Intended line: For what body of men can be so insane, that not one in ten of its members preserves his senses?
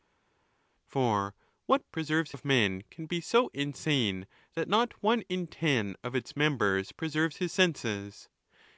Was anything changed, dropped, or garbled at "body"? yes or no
yes